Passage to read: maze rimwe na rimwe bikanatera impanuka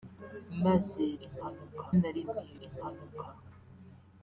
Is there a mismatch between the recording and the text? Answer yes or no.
yes